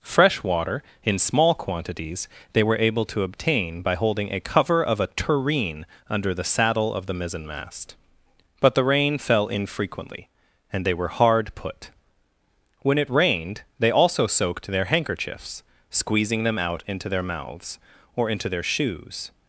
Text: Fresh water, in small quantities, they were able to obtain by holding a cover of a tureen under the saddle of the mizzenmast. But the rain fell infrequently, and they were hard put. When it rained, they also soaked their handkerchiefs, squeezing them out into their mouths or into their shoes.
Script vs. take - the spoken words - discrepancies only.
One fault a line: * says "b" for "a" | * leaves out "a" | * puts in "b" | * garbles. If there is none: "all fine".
all fine